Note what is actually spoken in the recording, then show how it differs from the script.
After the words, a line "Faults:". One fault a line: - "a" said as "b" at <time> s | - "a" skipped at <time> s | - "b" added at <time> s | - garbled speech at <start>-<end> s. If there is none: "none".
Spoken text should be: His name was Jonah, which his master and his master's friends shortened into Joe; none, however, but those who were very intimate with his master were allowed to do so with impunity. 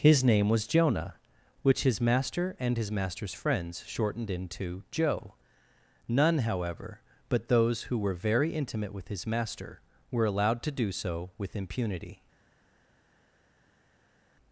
His name was Jonah, which his master and his master's friends shortened into Joe; none, however, but those who were very intimate with his master were allowed to do so with impunity.
Faults:
none